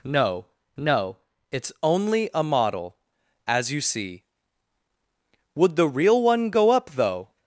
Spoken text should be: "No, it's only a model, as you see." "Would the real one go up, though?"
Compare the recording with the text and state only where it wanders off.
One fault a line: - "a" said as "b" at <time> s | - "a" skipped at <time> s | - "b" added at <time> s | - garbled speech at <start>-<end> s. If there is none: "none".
- "no" added at 0.8 s